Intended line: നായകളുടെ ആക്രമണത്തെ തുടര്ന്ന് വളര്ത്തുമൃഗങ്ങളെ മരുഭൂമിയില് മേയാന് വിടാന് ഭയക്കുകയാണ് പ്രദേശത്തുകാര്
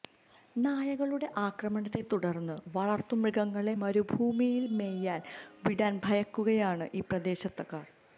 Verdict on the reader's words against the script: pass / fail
fail